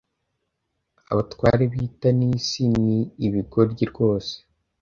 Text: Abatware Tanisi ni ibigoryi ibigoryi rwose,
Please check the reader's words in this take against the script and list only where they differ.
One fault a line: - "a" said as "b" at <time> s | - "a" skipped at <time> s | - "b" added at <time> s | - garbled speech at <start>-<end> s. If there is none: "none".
- "b'i" added at 1.7 s
- "ibigoryi" skipped at 3.8 s